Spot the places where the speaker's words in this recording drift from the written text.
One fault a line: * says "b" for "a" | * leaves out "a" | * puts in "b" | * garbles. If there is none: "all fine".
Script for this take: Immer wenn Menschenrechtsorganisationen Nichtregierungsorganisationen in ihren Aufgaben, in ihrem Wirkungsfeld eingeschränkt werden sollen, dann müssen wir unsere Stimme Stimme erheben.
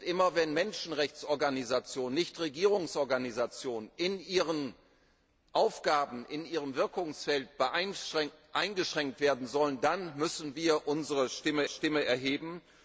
all fine